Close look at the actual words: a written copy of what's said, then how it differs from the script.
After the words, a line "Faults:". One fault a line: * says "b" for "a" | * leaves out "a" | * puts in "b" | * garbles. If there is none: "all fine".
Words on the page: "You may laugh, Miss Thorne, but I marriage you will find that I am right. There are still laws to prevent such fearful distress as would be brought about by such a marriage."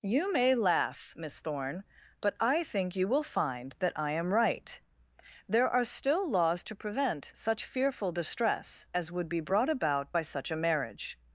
"You may laugh, Miss Thorne, but I think you will find that I am right. There are still laws to prevent such fearful distress as would be brought about by such a marriage."
Faults:
* says "think" for "marriage"